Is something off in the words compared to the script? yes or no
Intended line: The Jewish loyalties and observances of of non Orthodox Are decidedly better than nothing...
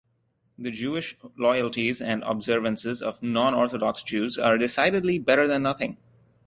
yes